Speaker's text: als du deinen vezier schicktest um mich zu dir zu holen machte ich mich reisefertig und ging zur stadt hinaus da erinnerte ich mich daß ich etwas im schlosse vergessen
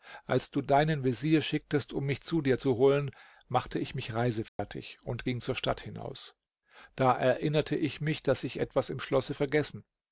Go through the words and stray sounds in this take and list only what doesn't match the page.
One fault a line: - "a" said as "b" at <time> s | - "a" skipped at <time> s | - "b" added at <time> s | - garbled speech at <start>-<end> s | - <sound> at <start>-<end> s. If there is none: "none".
- dropout at 4.5-4.6 s